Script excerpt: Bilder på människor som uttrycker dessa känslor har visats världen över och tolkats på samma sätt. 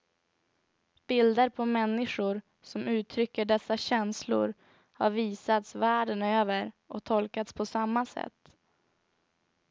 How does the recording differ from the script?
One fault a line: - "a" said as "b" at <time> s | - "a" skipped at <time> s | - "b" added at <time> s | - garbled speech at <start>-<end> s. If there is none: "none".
none